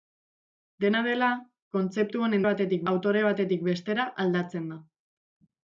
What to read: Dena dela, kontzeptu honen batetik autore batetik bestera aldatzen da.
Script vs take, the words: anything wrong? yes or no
no